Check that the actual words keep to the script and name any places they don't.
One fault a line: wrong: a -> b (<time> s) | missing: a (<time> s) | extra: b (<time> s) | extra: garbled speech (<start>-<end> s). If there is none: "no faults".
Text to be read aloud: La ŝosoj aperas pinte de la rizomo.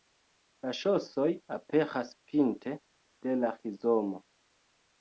no faults